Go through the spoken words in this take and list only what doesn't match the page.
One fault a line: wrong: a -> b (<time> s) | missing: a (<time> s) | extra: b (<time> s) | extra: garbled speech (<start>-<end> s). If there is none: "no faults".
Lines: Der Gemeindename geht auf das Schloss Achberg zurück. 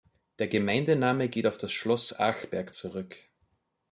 no faults